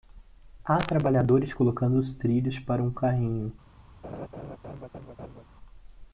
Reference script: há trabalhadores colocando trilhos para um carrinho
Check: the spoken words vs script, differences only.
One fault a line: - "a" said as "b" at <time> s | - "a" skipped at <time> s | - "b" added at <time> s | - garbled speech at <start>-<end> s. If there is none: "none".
- "os" added at 2.0 s